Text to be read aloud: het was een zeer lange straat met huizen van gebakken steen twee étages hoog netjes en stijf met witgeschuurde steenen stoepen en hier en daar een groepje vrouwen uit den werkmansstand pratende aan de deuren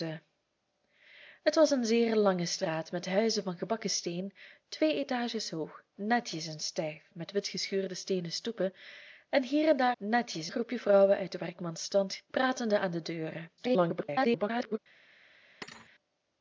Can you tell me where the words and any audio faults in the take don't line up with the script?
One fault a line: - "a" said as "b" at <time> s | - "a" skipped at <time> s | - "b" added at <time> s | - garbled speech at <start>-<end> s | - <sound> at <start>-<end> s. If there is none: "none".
- "een" said as "netjes" at 10.0 s
- garbled speech at 13.6-14.8 s
- thud at 15.6-15.9 s